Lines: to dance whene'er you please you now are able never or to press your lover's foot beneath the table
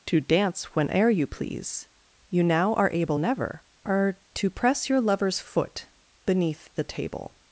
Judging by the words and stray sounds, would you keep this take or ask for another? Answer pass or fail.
pass